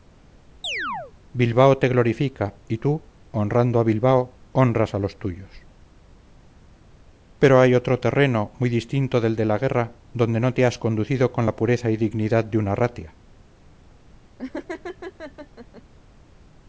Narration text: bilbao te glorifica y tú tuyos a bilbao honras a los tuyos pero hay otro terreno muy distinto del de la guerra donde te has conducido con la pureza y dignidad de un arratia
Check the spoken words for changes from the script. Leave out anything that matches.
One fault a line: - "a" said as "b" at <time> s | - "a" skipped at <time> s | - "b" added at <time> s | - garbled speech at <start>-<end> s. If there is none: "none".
- "tuyos" said as "honrando" at 3.3 s
- "no" added at 10.4 s